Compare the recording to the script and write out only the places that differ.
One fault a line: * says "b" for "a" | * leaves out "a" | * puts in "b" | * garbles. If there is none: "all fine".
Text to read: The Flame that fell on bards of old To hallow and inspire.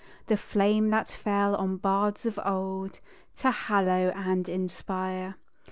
all fine